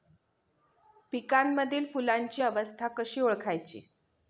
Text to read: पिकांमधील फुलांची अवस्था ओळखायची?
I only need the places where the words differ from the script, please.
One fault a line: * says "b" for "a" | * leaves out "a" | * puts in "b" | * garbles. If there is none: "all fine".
* puts in "कशी"